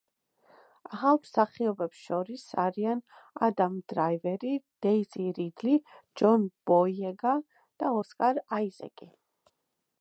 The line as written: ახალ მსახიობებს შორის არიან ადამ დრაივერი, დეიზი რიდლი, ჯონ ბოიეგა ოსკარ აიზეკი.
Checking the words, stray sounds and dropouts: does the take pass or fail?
fail